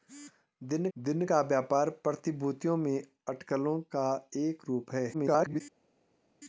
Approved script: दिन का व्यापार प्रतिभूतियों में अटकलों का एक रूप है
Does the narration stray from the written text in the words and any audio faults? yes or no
yes